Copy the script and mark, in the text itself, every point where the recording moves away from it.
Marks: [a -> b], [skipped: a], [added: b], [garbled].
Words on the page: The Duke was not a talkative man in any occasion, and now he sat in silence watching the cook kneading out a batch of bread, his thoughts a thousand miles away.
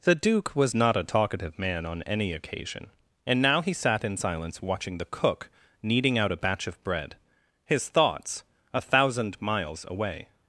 The Duke was not a talkative man [in -> on] any occasion, and now he sat in silence watching the cook kneading out a batch of bread, his thoughts a thousand miles away.